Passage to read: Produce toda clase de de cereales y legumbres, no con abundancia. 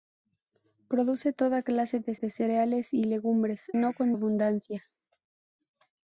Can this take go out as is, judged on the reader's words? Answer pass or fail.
pass